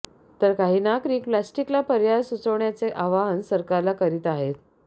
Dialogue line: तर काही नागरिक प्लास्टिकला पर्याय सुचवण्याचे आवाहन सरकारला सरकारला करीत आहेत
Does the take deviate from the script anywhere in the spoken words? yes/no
yes